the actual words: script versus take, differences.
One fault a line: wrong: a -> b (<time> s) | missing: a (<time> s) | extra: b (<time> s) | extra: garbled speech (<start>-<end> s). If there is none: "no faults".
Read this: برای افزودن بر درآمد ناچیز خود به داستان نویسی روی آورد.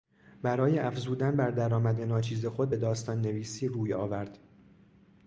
no faults